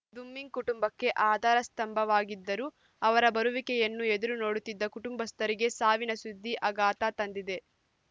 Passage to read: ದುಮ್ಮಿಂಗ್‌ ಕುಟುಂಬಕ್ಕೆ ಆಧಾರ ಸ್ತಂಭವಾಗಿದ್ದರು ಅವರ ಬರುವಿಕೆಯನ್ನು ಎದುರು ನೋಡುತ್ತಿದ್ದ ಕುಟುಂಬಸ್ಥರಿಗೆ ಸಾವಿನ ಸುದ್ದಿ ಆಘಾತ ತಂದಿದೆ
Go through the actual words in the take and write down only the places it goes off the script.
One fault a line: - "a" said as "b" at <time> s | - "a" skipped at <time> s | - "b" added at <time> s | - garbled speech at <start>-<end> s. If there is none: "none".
none